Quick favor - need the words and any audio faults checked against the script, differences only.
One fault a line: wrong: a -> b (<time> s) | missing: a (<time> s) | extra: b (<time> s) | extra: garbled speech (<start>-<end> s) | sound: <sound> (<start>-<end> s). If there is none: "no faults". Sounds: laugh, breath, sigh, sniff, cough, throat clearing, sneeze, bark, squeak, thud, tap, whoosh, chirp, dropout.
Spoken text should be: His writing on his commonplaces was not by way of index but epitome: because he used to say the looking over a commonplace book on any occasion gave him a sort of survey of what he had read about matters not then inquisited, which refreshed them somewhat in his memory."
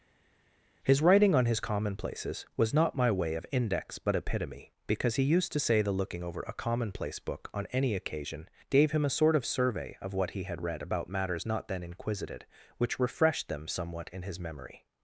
wrong: by -> my (3.0 s)